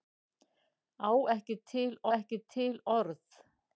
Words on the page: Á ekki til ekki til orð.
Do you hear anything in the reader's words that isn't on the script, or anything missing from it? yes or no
no